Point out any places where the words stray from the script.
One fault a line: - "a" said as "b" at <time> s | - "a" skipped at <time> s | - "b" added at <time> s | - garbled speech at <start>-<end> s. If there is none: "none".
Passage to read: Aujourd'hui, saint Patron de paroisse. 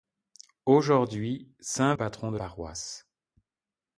none